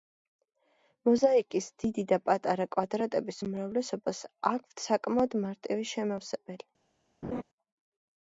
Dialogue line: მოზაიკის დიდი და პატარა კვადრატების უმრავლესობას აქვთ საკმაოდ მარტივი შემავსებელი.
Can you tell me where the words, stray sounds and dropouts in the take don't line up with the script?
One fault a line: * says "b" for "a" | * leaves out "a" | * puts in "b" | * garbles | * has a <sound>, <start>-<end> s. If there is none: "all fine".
* has a laugh, 7.2-7.4 s